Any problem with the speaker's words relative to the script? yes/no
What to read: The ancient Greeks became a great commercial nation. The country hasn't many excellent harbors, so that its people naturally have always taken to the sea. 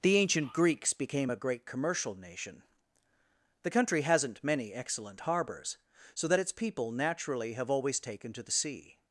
no